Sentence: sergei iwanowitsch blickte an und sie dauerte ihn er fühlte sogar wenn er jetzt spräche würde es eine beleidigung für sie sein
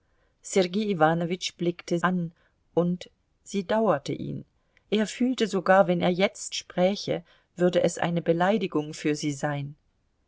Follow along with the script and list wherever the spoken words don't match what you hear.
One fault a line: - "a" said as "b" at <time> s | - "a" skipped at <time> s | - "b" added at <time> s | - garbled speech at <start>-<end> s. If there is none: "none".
none